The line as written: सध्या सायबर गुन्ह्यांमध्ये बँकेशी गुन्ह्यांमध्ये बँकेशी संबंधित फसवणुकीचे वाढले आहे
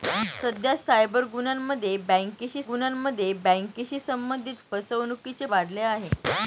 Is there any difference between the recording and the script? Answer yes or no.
no